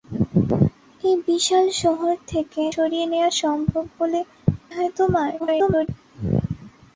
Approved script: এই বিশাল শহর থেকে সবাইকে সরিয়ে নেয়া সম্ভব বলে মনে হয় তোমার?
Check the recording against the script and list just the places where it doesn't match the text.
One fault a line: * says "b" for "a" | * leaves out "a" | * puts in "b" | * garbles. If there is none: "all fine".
* leaves out "সবাইকে"
* leaves out "মনে"
* garbles